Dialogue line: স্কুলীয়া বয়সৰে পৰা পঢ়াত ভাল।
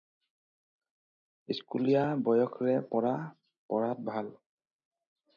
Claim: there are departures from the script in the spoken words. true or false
false